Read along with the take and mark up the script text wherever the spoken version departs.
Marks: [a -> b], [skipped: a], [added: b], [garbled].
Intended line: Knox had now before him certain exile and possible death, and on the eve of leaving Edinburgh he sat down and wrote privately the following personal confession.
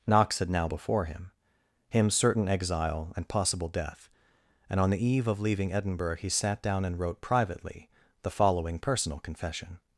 Knox had now before him [added: him] certain exile and possible death, and on the eve of leaving Edinburgh he sat down and wrote privately the following personal confession.